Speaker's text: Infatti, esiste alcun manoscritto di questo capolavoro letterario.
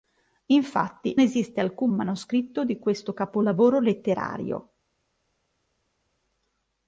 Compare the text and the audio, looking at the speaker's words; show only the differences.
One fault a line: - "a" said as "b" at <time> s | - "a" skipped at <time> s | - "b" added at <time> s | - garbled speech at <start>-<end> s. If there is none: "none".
none